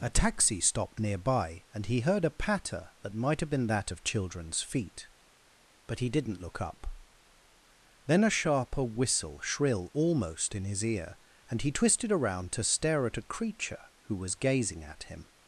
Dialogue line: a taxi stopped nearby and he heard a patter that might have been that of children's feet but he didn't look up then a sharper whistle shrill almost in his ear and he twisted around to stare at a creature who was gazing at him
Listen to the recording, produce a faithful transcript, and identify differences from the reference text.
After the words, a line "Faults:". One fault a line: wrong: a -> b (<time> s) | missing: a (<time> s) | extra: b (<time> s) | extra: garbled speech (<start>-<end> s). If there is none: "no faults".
a taxi stopped nearby and he heard a patter that might have been that of children's feet but he didn't look up then a sharper whistle shrill almost in his ear and he twisted around to stare at a creature who was gazing at him
Faults:
no faults